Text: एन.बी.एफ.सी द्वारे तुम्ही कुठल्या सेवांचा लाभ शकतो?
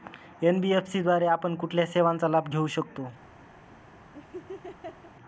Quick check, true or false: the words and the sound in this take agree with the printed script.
false